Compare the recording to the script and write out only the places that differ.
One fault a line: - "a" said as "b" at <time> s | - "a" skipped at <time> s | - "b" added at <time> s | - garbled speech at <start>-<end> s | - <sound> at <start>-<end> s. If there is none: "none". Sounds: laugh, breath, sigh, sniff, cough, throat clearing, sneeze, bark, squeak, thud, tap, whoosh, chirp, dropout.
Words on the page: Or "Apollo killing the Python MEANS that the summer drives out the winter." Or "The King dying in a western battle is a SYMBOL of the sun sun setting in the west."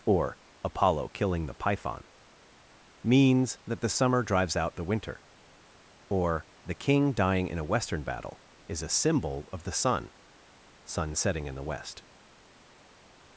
none